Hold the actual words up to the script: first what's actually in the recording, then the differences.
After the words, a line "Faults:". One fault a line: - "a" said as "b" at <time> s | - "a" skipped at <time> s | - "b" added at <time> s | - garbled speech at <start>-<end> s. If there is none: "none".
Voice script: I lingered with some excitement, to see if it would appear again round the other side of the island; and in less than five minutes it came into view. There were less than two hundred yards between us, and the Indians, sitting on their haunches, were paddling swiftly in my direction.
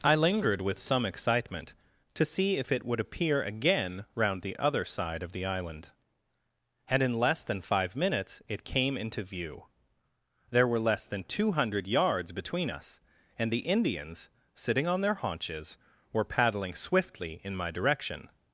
I lingered with some excitement, to see if it would appear again round the other side of the island; and in less than five minutes it came into view. There were less than two hundred yards between us, and the Indians, sitting on their haunches, were paddling swiftly in my direction.
Faults:
none